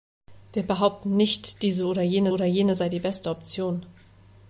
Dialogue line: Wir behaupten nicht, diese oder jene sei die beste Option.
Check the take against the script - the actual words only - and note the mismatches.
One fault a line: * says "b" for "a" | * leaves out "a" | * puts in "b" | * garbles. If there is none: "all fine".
* puts in "oder jene"